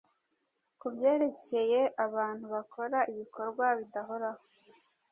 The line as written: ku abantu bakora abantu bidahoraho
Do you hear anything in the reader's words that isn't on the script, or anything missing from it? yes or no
yes